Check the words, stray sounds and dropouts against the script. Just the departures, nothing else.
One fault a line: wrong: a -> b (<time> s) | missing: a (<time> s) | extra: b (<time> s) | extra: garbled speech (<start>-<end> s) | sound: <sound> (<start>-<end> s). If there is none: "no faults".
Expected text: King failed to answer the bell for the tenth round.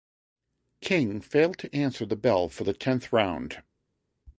no faults